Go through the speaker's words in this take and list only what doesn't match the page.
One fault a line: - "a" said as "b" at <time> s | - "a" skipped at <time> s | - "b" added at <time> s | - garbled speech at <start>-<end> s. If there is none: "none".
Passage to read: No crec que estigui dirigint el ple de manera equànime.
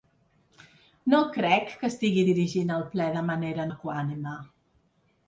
none